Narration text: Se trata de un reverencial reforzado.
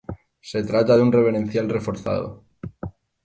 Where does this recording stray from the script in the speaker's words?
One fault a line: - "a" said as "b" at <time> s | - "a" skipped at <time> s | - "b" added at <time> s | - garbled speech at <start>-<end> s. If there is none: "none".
none